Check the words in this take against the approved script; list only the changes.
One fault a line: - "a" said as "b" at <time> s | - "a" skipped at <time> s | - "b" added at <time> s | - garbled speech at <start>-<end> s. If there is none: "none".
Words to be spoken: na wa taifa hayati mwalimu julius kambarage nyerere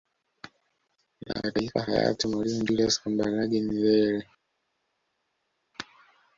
none